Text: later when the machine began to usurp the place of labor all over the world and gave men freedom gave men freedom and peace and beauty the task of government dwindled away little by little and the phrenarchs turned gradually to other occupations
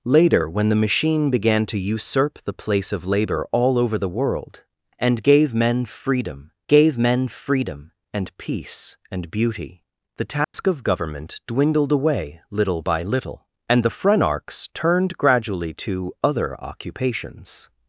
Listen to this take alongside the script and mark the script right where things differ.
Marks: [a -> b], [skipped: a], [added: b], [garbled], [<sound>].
later when the machine began to usurp the place of labor all over the world and gave men freedom gave men freedom and peace and beauty the task [dropout] of government dwindled away little by little and the phrenarchs turned gradually to other occupations